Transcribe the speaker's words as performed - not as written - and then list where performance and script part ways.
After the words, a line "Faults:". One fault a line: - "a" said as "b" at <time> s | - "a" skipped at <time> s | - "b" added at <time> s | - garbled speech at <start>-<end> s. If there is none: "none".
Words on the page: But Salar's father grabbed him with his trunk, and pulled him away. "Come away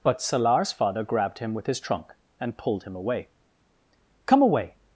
But Salar's father grabbed him with his trunk, and pulled him away. "Come away
Faults:
none